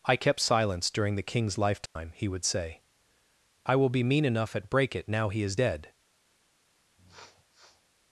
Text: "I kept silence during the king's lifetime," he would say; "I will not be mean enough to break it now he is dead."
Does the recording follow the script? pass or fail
fail